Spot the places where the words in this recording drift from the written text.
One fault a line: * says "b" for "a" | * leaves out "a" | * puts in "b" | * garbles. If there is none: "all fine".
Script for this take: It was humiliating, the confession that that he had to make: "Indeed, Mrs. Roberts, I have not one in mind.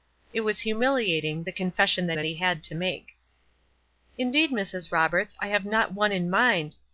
all fine